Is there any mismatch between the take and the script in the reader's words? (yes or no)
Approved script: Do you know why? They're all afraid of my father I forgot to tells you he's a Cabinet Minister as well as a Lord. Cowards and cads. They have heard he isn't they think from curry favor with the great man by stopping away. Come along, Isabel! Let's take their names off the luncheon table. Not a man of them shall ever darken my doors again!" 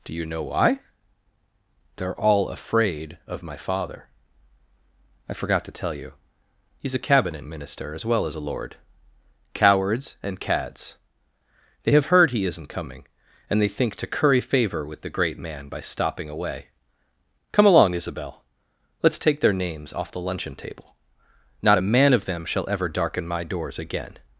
yes